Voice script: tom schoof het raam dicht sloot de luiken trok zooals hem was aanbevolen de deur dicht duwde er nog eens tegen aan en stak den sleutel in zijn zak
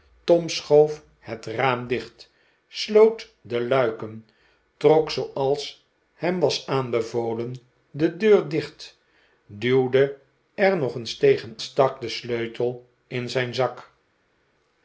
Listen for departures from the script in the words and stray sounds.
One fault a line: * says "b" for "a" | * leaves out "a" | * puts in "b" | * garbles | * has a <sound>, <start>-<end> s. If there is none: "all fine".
* leaves out "aan en"